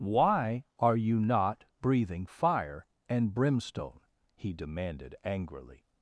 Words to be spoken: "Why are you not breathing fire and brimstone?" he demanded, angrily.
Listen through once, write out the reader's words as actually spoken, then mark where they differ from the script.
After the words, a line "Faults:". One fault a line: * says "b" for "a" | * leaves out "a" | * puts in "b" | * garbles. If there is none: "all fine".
"Why are you not breathing fire and brimstone?" he demanded, angrily.
Faults:
all fine